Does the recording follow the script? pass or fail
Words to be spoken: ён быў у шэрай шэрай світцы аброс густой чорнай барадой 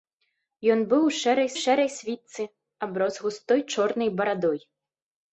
pass